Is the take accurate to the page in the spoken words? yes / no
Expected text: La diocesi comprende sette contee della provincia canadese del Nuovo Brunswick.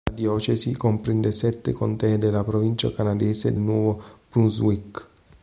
no